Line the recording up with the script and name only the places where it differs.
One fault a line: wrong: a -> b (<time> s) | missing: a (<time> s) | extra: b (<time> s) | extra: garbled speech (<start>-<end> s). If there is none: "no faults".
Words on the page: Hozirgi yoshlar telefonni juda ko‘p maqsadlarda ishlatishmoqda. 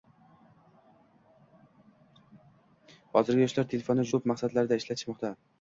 missing: juda (4.1 s)